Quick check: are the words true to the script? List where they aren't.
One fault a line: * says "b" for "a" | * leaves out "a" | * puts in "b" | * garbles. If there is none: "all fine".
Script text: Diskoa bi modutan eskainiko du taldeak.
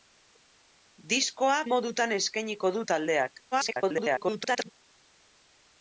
* leaves out "bi"
* garbles